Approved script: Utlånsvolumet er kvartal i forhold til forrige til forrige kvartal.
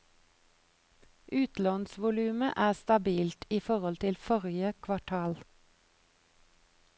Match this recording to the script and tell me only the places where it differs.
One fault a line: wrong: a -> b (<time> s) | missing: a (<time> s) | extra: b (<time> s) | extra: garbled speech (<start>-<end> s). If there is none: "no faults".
wrong: kvartal -> stabilt (2.8 s)
missing: til forrige (4.7 s)